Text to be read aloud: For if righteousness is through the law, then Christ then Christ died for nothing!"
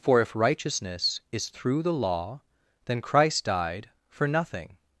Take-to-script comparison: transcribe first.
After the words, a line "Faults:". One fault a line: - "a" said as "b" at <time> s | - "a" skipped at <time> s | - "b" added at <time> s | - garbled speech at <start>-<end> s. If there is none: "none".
For if righteousness is through the law, then Christ died for nothing!"
Faults:
- "then Christ" skipped at 3.5 s